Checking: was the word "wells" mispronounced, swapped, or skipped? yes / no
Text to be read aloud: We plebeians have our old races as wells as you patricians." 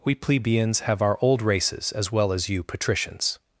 yes